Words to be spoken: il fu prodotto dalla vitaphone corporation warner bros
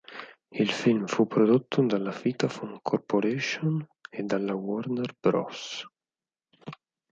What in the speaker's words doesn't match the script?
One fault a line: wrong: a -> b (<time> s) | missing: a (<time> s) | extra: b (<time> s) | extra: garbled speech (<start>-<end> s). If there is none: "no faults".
extra: film (0.7 s)
extra: e dalla (4.1 s)